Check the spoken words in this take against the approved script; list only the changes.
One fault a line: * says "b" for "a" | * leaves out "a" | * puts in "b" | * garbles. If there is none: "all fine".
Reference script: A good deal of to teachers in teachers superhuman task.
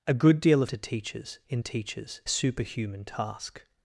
all fine